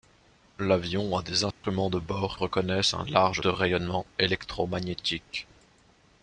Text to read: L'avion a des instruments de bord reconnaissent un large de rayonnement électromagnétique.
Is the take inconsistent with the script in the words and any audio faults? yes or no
yes